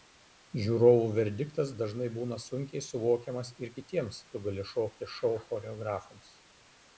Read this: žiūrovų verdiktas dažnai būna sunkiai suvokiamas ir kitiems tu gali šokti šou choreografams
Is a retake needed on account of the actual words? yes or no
no